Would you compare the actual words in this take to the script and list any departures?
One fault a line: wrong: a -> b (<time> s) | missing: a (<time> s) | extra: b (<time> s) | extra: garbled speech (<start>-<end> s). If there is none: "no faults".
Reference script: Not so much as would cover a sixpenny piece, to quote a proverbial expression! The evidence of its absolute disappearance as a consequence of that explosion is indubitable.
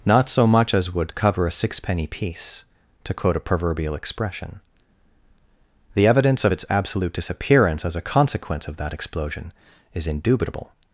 no faults